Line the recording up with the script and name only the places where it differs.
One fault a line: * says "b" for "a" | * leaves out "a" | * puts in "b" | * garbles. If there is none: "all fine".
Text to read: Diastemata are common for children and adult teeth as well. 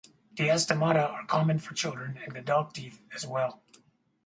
all fine